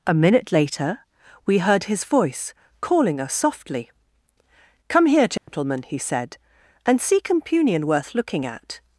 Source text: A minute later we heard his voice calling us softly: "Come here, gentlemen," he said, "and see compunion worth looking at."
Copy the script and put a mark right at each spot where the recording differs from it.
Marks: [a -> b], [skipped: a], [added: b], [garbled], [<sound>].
A minute later we heard his voice calling us softly: "Come here, gentlemen," [dropout] he said, "and see compunion worth looking at."